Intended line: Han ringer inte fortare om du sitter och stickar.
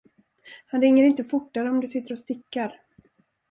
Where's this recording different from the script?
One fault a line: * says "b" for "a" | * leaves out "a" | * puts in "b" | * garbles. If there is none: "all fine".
all fine